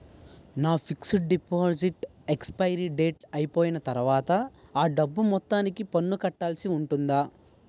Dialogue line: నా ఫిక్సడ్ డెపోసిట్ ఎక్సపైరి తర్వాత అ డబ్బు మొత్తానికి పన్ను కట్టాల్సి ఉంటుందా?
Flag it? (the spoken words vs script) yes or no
yes